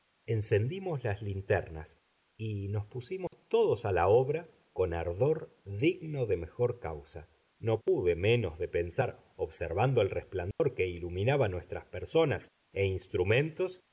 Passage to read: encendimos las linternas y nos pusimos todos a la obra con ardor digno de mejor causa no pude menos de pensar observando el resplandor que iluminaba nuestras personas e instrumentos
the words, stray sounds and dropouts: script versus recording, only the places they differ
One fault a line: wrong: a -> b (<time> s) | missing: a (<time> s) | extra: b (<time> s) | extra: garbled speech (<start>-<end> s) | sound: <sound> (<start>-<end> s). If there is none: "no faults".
sound: dropout (3.3-3.3 s)
sound: dropout (10.5-10.6 s)